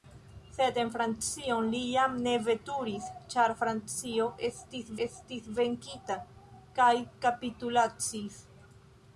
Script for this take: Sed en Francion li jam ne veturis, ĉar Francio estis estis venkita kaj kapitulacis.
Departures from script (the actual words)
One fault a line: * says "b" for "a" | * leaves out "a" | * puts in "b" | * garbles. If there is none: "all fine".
all fine